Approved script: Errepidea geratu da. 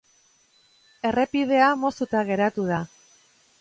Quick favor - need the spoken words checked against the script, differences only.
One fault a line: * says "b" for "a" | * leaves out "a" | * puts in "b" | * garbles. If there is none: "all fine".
* puts in "moztuta"